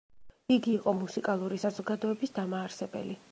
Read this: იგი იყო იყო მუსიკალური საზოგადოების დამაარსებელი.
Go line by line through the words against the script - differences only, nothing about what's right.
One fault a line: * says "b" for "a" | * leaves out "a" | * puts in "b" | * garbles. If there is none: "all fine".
* leaves out "იყო"